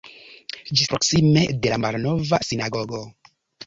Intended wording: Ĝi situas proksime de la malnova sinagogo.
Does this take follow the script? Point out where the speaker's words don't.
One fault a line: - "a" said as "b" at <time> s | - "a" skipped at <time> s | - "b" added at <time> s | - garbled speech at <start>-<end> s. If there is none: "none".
- "situas" skipped at 0.9 s